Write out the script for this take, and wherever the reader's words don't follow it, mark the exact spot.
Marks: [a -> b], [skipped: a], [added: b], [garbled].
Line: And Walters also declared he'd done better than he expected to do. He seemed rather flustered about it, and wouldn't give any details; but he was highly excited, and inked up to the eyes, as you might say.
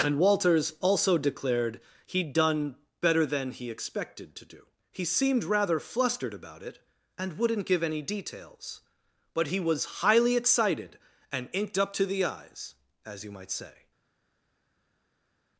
And Walters also declared he'd done better than he expected to do. He seemed rather flustered about it, and wouldn't give any details; but he was highly excited, and inked up to the eyes, as you might say.